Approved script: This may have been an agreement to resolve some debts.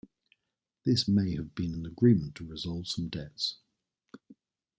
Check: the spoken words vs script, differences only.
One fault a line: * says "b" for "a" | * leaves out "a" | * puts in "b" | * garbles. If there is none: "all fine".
all fine